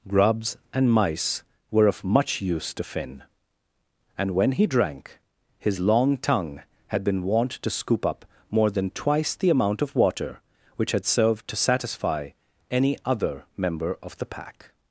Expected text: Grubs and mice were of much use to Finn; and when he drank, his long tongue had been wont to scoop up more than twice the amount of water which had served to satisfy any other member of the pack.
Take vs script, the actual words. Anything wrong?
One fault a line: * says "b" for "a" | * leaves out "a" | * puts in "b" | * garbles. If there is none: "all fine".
all fine